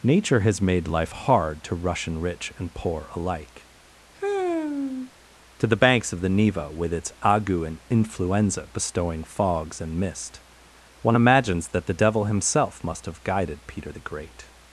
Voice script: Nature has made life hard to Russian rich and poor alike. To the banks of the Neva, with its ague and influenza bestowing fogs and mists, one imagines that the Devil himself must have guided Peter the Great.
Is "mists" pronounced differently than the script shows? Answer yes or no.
yes